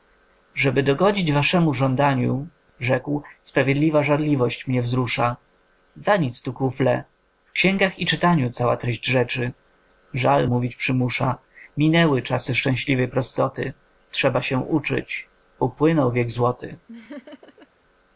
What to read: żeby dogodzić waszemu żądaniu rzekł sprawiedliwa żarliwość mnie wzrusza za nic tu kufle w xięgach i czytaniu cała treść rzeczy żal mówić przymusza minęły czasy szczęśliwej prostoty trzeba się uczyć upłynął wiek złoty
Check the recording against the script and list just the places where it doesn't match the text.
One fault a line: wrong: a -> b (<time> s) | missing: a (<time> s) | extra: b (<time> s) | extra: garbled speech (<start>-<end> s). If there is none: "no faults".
no faults